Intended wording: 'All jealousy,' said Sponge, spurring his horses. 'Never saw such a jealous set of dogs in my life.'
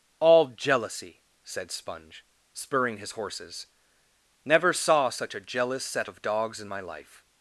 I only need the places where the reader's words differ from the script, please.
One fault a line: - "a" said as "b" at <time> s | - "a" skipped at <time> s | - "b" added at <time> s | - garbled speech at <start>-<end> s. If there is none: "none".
none